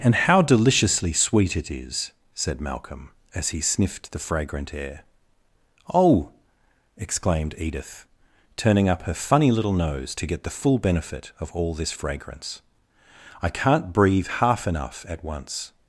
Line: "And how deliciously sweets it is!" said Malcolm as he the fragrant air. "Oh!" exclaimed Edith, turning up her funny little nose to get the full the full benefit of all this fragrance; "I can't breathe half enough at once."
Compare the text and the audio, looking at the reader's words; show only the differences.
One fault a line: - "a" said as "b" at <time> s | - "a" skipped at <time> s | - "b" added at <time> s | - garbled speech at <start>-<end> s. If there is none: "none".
- "sweets" said as "sweet" at 1.1 s
- "sniffed" added at 3.6 s
- "the full" skipped at 10.8 s